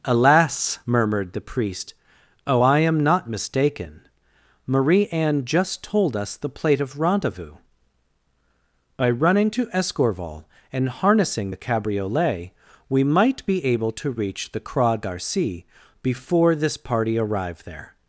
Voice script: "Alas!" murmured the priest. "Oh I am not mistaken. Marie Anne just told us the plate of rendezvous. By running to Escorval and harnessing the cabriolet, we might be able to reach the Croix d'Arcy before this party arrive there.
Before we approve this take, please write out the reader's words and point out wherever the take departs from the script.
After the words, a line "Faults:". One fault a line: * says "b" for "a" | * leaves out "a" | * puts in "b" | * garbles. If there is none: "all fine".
"Alas!" murmured the priest. "Oh I am not mistaken. Marie Anne just told us the plate of rendezvous. By running to Escorval and harnessing the cabriolet, we might be able to reach the Croix d'Arcy before this party arrive there.
Faults:
all fine